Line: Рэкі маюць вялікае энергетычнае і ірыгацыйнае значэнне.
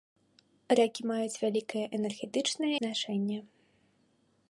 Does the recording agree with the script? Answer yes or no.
no